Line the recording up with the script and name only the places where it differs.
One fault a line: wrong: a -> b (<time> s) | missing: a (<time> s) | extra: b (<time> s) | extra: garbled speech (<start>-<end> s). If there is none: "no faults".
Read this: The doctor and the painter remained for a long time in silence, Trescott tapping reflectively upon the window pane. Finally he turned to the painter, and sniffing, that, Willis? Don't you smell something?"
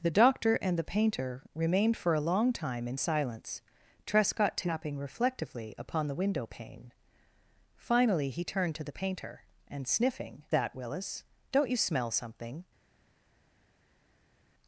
no faults